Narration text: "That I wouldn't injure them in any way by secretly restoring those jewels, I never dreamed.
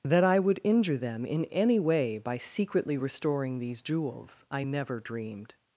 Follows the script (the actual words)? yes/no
no